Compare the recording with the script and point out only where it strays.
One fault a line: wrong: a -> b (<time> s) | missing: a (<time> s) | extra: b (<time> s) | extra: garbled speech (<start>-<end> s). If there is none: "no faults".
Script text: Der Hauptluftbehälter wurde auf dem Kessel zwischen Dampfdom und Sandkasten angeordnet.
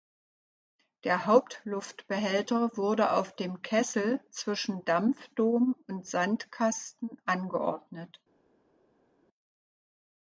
no faults